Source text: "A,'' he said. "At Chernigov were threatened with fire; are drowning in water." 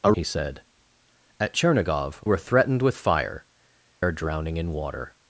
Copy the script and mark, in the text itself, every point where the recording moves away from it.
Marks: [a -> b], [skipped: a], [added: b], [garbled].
"A,'' he said. "At Chernigov were threatened with fire; are drowning in water."